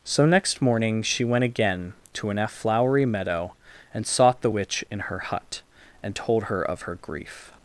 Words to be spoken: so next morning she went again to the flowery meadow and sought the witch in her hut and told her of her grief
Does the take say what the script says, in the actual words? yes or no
no